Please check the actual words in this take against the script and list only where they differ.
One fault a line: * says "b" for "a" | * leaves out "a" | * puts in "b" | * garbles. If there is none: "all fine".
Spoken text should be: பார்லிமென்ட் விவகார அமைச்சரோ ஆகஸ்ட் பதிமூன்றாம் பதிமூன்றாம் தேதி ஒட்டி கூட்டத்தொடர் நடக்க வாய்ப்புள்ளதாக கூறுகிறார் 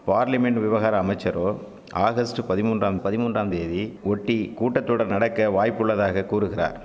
all fine